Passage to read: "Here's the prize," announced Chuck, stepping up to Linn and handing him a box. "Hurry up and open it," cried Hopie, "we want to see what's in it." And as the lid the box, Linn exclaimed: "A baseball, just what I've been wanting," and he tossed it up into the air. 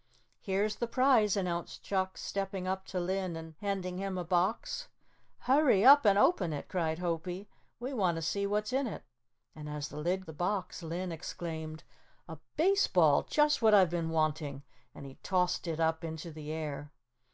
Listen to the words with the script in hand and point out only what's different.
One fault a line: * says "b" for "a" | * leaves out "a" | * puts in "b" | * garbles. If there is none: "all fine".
all fine